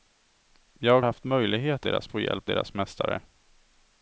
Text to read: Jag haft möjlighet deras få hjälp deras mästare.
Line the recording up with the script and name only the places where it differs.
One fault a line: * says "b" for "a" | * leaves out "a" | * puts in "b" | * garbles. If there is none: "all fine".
all fine